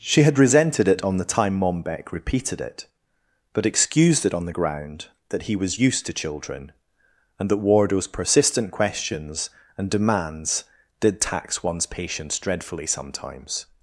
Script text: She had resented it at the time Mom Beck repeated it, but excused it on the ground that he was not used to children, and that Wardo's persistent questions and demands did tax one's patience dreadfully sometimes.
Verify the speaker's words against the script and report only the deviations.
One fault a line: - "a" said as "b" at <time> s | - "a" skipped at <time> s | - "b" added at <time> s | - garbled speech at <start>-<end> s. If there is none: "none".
- "at" said as "on" at 1.0 s
- "not" skipped at 5.8 s